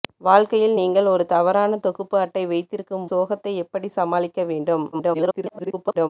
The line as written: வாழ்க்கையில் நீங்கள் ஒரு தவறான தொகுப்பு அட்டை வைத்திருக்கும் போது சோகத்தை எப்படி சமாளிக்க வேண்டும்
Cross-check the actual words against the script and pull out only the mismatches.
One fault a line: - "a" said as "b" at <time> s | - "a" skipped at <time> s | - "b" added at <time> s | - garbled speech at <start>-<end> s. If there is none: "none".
- "போது" skipped at 3.1 s
- garbled speech at 4.9-6.1 s